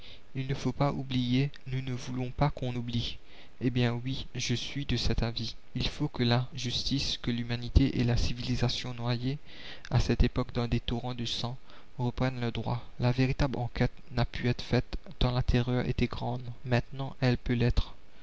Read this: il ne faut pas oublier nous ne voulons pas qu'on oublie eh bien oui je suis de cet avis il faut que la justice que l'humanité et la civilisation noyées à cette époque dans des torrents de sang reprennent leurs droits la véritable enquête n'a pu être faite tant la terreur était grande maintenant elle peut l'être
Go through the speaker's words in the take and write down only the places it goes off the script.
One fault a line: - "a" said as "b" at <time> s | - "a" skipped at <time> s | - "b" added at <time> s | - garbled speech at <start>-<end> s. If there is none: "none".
none